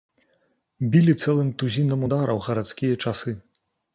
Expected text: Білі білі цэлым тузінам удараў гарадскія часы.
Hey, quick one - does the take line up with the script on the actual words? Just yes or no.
no